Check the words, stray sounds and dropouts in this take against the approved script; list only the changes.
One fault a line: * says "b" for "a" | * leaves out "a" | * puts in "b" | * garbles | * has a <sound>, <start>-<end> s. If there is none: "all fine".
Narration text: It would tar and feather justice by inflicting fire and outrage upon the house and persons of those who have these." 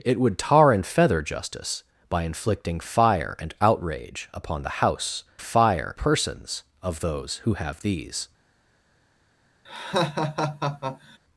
* says "fire" for "and"
* has a laugh, 9.7-11.2 s